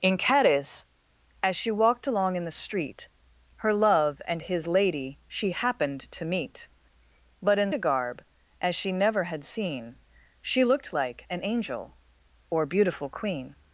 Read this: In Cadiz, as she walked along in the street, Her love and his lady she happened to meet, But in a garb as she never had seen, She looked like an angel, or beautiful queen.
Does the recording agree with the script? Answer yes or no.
yes